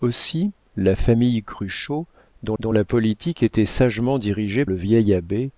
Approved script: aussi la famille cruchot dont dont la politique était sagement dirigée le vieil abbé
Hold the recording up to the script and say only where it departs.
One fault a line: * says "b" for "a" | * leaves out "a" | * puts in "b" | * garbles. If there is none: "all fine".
all fine